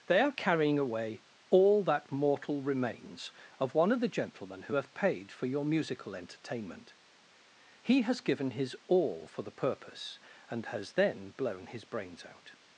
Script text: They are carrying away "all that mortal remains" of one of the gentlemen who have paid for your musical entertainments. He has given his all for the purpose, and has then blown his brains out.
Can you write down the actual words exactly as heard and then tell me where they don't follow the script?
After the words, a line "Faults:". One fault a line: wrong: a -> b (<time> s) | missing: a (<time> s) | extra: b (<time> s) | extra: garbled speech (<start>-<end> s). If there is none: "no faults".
They are carrying away "all that mortal remains" of one of the gentlemen who have paid for your musical entertainment. He has given his all for the purpose, and has then blown his brains out.
Faults:
wrong: entertainments -> entertainment (6.1 s)